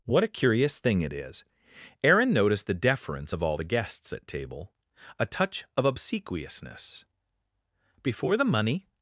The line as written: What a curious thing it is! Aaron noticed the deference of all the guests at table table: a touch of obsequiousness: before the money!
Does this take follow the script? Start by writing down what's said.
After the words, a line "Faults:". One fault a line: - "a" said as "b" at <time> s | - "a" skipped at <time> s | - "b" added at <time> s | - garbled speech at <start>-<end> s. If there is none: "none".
What a curious thing it is! Aaron noticed the deference of all the guests at table: a touch of obsequiousness: before the money!
Faults:
- "table" skipped at 4.7 s